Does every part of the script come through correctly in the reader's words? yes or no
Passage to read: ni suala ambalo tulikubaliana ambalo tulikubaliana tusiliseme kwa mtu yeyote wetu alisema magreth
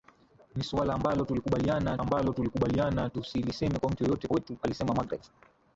yes